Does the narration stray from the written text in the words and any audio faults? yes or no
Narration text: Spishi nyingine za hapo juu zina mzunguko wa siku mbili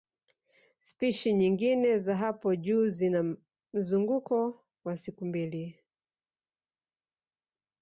no